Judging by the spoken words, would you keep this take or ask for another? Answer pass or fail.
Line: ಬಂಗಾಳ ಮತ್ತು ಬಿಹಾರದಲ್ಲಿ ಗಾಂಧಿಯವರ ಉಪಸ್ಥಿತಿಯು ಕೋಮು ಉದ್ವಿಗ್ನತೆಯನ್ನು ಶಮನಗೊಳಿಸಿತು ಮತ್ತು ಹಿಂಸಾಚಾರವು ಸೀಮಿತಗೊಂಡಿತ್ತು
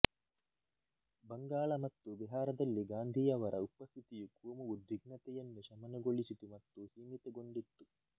fail